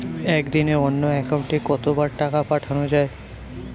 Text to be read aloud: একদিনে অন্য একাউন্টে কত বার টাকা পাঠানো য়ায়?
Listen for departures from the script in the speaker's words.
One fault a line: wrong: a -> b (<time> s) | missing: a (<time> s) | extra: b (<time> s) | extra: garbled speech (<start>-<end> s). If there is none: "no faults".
no faults